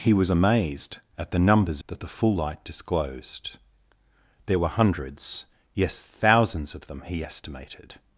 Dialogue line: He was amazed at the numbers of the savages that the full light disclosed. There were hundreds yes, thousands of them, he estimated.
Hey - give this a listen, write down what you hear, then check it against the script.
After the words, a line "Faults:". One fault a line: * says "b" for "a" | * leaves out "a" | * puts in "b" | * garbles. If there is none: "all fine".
He was amazed at the numbers that the full light disclosed. There were hundreds yes, thousands of them, he estimated.
Faults:
* leaves out "of the savages"